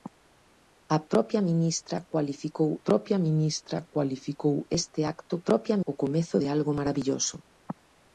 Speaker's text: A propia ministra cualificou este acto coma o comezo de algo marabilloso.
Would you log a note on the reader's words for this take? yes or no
yes